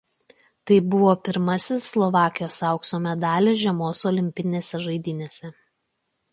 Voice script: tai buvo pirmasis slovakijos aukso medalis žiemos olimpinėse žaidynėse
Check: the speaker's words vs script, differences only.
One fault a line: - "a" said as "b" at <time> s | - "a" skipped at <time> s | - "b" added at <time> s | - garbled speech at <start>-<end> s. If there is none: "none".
none